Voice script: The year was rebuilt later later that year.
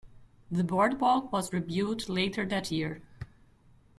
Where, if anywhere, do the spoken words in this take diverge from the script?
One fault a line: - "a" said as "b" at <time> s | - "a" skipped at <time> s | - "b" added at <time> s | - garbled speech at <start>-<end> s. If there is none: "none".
- "year" said as "boardwalk" at 0.6 s
- "later" skipped at 2.4 s